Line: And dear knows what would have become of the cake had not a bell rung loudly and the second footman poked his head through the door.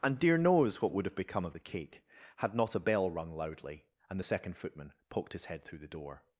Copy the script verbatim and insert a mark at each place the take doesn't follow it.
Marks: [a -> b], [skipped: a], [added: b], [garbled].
And dear knows what would have become of the cake had not a bell rung loudly and the second footman poked his head through the door.